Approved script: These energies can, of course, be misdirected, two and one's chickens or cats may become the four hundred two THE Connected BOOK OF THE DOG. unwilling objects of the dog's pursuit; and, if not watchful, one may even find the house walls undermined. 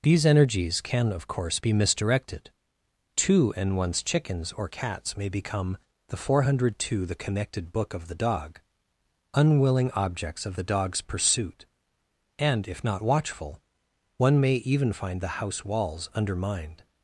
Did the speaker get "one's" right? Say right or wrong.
right